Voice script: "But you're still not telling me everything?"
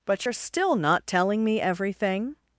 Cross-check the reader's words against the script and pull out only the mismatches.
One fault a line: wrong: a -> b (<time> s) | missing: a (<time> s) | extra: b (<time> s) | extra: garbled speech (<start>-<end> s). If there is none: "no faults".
no faults